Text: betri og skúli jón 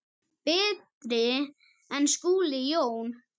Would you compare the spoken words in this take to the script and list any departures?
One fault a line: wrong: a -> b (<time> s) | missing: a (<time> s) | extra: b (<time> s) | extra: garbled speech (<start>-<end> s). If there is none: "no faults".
wrong: og -> en (2.0 s)